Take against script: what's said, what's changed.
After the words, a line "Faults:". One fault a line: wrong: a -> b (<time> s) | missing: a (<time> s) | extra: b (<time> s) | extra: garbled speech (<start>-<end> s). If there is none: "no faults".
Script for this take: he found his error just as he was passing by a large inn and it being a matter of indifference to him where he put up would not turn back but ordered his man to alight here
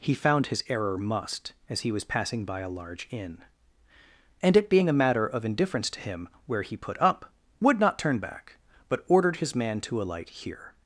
he found his error must as he was passing by a large inn and it being a matter of indifference to him where he put up would not turn back but ordered his man to alight here
Faults:
wrong: just -> must (1.0 s)